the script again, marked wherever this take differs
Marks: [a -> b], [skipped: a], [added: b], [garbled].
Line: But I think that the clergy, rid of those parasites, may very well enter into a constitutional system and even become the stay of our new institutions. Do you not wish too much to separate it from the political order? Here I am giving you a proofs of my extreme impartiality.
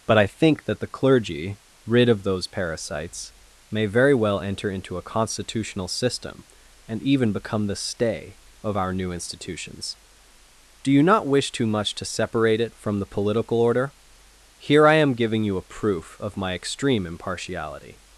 But I think that the clergy, rid of those parasites, may very well enter into a constitutional system and even become the stay of our new institutions. Do you not wish too much to separate it from the political order? Here I am giving you a [proofs -> proof] of my extreme impartiality.